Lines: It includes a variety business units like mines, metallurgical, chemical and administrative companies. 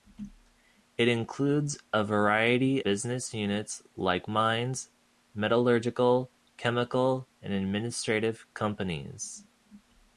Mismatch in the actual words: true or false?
false